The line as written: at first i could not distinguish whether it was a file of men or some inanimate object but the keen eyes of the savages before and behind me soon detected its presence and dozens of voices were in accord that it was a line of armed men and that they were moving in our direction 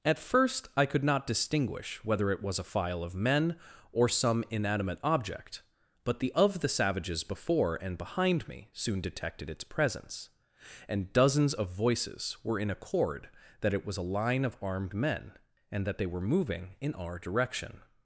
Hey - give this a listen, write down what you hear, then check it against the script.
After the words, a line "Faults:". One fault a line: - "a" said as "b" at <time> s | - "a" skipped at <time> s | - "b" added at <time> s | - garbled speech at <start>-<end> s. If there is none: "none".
at first i could not distinguish whether it was a file of men or some inanimate object but the of the savages before and behind me soon detected its presence and dozens of voices were in accord that it was a line of armed men and that they were moving in our direction
Faults:
- "keen eyes" skipped at 6.3 s